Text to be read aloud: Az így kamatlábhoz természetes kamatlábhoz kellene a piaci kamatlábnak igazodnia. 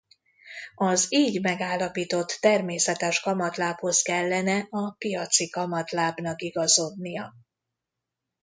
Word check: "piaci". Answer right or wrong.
right